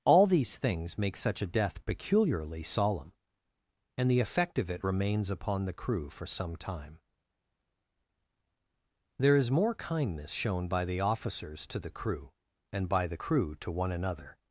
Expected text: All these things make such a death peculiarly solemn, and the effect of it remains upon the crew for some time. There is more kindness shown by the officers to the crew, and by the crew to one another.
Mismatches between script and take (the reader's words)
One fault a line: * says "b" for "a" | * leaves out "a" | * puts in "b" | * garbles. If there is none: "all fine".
all fine